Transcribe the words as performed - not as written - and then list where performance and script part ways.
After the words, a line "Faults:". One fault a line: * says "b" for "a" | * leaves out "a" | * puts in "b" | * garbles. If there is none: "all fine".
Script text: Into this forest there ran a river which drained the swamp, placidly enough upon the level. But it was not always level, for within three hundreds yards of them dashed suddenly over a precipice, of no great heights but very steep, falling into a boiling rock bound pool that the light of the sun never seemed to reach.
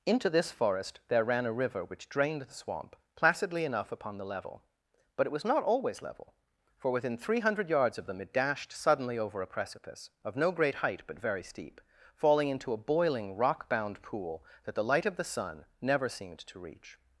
Into this forest there ran a river which drained the swamp, placidly enough upon the level. But it was not always level, for within three hundred yards of them it dashed suddenly over a precipice, of no great height but very steep, falling into a boiling rock bound pool that the light of the sun never seemed to reach.
Faults:
* says "hundred" for "hundreds"
* puts in "it"
* says "height" for "heights"